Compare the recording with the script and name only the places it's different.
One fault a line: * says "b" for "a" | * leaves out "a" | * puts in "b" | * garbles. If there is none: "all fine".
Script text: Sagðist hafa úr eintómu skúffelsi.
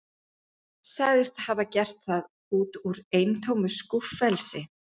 * puts in "gert það út"